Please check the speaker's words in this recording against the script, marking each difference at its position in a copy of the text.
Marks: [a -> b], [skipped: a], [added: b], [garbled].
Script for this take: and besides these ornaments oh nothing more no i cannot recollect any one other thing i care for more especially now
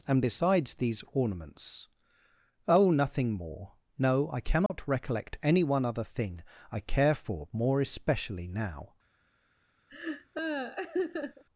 and besides these ornaments oh nothing more no i cannot recollect any one other thing i care for more especially now